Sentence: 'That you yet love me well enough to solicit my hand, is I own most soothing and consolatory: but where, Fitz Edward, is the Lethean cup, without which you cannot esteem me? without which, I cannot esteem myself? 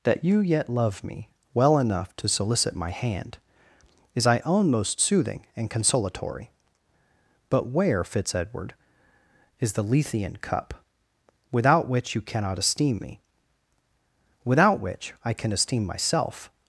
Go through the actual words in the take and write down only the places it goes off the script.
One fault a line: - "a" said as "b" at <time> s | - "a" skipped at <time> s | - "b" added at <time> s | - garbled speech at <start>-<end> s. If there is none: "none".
- "cannot" said as "can" at 15.3 s